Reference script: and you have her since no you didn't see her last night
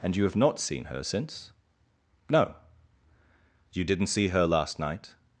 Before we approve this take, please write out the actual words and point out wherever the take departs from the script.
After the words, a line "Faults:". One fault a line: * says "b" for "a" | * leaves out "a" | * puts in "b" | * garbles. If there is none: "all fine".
and you have not seen her since no you didn't see her last night
Faults:
* puts in "not seen"